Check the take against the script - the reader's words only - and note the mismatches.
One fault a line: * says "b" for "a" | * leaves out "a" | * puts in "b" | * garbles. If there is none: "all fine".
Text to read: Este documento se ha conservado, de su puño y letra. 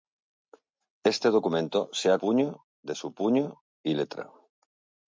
* says "puño" for "conservado"